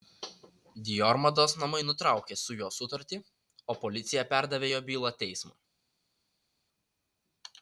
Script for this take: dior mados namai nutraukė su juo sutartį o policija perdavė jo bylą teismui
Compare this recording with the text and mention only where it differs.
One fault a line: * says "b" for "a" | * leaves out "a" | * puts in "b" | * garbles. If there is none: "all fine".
all fine